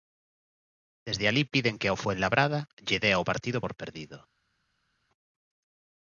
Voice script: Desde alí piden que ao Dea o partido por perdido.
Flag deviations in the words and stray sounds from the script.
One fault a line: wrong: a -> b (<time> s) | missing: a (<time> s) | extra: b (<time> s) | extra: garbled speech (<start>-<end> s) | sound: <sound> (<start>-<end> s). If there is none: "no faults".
extra: Fuenlabrada lle (2.0 s)